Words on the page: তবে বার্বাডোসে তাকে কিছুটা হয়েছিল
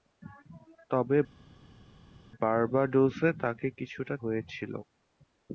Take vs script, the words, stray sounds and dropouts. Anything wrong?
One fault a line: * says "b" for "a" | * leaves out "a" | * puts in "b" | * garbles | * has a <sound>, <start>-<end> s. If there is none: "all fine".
all fine